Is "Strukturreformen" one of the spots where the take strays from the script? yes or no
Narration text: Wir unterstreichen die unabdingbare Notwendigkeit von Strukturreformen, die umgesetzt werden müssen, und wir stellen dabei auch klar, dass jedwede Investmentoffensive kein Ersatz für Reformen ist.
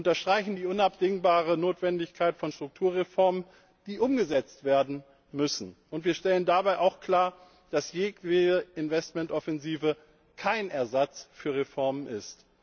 no